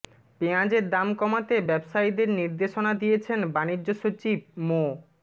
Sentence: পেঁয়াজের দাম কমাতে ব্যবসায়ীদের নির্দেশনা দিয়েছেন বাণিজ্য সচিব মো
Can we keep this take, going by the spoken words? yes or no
yes